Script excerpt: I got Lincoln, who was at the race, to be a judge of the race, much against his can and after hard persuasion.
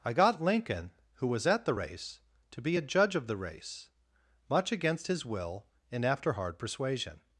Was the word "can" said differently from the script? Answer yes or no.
yes